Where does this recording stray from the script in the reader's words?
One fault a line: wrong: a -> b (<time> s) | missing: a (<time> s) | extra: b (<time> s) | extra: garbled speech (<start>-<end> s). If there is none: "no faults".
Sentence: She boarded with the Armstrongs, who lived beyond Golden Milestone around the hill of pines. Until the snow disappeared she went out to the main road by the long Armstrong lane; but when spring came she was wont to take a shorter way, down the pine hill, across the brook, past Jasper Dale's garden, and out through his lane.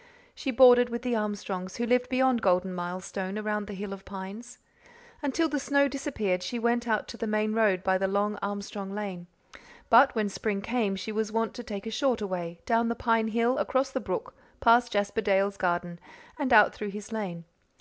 no faults